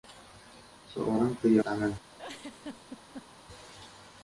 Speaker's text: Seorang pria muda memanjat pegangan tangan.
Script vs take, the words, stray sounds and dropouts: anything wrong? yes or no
yes